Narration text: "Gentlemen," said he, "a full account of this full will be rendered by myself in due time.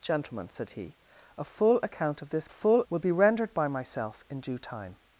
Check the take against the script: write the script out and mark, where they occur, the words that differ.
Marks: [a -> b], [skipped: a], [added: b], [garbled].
"Gentlemen," said he, "a full account of this full will be rendered by myself in due time.